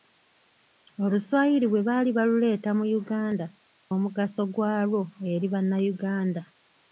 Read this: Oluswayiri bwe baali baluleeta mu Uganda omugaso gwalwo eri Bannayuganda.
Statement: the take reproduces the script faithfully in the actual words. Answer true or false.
true